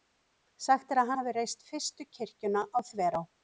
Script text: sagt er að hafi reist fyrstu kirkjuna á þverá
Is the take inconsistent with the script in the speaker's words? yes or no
no